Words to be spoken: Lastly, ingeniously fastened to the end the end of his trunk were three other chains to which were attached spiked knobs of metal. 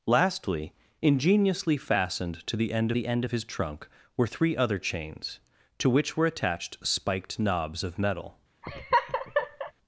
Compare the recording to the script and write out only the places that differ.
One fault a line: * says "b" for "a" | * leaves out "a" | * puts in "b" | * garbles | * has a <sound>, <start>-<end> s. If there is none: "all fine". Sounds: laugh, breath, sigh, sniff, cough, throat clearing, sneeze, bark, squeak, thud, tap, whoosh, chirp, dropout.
* has a laugh, 8.6-9.7 s